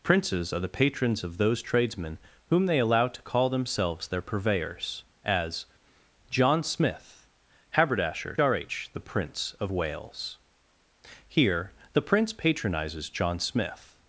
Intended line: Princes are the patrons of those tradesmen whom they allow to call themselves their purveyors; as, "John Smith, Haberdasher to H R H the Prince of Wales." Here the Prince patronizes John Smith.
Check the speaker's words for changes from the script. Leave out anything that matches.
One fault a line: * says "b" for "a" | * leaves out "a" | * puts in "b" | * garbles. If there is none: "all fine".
* leaves out "to H"